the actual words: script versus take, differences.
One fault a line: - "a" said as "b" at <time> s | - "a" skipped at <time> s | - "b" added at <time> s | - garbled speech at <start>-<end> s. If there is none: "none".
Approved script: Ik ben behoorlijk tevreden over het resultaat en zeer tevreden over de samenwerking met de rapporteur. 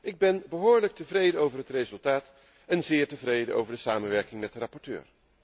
none